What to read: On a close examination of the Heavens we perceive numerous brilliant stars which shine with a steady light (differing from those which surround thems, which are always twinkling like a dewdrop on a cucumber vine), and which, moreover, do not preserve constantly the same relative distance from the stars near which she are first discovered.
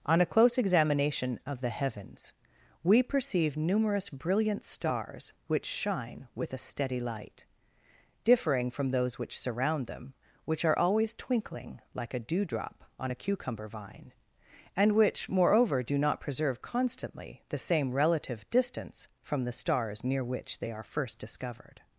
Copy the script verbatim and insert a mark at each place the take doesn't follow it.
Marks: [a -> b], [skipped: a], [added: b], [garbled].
On a close examination of the Heavens we perceive numerous brilliant stars which shine with a steady light (differing from those which surround [thems, -> them] which are always twinkling like a dewdrop on a cucumber vine), and which, moreover, do not preserve constantly the same relative distance from the stars near which [she -> they] are first discovered.